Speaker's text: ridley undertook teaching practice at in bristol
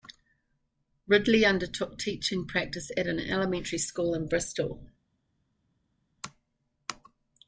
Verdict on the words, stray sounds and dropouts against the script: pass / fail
fail